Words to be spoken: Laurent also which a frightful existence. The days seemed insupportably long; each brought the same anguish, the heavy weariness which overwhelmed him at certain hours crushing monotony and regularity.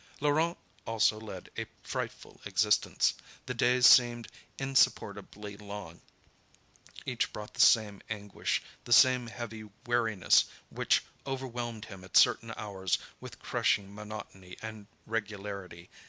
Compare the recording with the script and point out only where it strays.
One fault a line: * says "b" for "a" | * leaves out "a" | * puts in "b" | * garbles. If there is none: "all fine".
* says "led" for "which"
* puts in "same"
* puts in "with"